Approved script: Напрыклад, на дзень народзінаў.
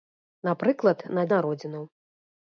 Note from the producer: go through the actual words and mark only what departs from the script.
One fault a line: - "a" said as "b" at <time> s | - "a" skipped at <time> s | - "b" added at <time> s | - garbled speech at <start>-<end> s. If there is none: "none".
- "дзень" skipped at 1.3 s